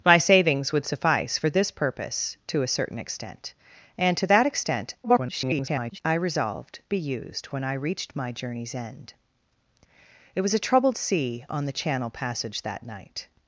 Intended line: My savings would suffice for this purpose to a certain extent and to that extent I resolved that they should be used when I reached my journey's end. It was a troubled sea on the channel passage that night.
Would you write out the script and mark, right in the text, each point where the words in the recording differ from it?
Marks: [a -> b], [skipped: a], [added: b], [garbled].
My savings would suffice for this purpose to a certain extent and to that extent [garbled] I resolved [skipped: that they should] be used when I reached my journey's end. It was a troubled sea on the channel passage that night.